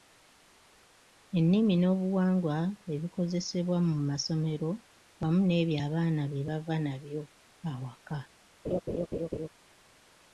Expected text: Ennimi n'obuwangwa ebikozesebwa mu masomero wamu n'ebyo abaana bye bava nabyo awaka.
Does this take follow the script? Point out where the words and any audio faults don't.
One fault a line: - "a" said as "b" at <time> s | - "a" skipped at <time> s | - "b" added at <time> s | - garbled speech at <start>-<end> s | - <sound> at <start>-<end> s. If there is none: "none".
- laugh at 8.6-9.5 s